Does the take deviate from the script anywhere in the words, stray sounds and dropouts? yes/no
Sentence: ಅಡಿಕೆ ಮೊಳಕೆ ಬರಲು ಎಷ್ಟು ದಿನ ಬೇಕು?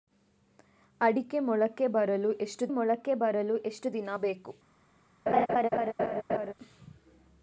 yes